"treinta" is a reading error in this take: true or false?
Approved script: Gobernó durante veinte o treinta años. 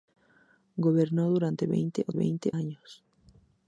true